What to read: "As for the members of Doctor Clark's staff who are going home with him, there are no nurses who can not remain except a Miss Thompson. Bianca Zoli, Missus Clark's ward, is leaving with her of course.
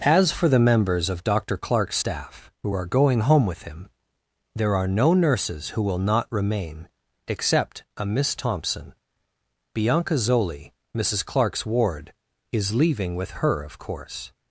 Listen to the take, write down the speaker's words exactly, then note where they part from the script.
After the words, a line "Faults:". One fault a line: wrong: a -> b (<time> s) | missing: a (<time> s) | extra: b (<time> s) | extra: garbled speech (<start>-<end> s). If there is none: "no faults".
"As for the members of Doctor Clark's staff who are going home with him, there are no nurses who will not remain except a Miss Thompson. Bianca Zoli, Missus Clark's ward, is leaving with her of course.
Faults:
wrong: can -> will (5.8 s)